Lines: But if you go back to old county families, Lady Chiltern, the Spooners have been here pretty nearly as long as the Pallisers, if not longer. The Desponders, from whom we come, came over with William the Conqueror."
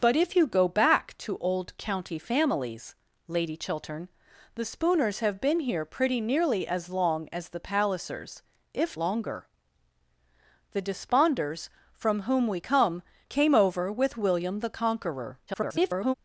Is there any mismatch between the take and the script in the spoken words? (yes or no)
yes